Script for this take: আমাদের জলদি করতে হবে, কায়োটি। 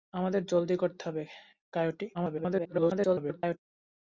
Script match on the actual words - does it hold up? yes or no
no